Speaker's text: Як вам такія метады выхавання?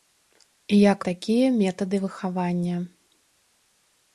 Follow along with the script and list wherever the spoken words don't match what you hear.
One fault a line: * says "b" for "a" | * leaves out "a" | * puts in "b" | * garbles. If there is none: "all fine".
* leaves out "вам"